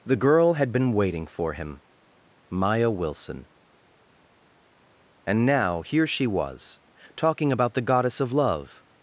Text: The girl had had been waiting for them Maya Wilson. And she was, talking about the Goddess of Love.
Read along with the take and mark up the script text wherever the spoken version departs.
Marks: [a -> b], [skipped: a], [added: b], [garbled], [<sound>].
The girl had [skipped: had] been waiting for [them -> him] Maya Wilson. And [added: now here] she was, talking about the Goddess of Love.